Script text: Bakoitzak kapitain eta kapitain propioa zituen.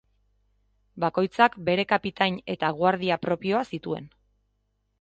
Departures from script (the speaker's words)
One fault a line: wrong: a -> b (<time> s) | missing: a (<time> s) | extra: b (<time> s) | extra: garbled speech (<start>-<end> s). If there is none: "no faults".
extra: bere (1.7 s)
wrong: kapitain -> guardia (2.8 s)